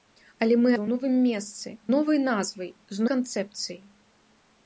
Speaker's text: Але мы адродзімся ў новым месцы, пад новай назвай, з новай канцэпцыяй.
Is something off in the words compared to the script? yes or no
yes